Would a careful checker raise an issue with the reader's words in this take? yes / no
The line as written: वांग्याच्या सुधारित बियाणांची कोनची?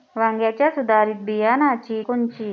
no